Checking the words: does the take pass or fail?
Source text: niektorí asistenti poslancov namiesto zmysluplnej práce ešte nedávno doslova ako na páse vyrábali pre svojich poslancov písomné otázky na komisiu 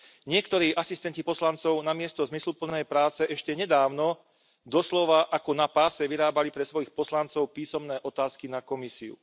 pass